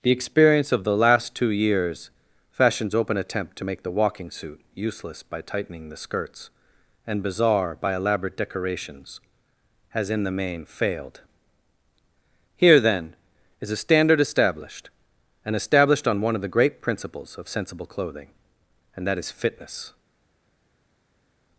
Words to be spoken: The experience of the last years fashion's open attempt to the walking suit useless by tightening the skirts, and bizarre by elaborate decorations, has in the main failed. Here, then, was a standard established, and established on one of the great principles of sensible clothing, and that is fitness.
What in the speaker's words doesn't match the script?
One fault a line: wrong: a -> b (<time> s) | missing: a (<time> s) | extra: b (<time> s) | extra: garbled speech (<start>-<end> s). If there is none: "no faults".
extra: two (1.4 s)
extra: make (3.6 s)
wrong: was -> is (13.6 s)